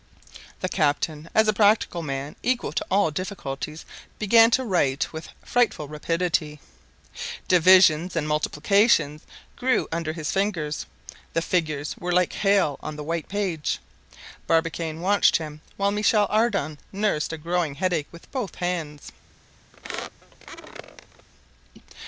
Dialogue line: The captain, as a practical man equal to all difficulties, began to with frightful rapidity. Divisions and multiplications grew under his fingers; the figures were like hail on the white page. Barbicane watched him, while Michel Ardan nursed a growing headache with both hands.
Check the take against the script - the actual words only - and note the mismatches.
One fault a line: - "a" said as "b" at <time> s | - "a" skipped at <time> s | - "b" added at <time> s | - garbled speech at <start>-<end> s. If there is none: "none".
- "write" added at 4.6 s